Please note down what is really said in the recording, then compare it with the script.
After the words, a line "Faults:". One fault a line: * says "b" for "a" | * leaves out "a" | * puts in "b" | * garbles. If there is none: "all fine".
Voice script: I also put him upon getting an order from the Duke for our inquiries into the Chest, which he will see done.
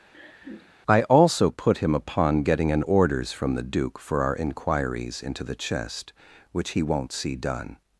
I also put him upon getting an orders from the Duke for our inquiries into the Chest, which he won't see done.
Faults:
* says "orders" for "order"
* says "won't" for "will"